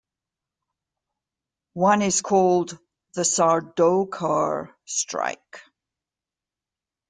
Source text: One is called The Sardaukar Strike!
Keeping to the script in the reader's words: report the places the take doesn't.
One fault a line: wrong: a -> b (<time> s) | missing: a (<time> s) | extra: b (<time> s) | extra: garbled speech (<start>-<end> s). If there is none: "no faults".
no faults